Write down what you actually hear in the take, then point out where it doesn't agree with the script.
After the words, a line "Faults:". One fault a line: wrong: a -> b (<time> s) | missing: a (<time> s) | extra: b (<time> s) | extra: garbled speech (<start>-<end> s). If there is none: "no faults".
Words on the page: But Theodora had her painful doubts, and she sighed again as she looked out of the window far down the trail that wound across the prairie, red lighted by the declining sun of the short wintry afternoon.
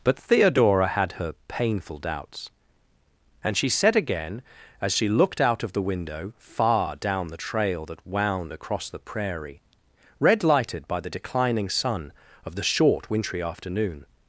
But Theodora had her painful doubts, and she said again as she looked out of the window far down the trail that wound across the prairie, red lighted by the declining sun of the short wintry afternoon.
Faults:
wrong: sighed -> said (3.7 s)